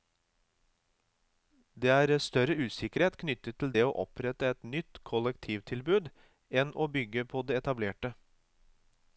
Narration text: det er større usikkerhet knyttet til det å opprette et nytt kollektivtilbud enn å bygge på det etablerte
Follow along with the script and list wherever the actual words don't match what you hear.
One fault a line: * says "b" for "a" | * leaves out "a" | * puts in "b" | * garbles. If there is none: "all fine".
all fine